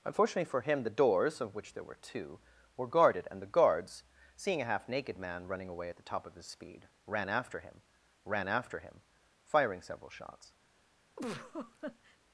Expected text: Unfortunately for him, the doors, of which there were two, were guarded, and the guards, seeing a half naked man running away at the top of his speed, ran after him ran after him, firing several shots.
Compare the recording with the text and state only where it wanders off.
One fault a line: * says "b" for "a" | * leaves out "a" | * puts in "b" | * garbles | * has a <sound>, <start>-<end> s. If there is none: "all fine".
* has a laugh, 11.2-12.2 s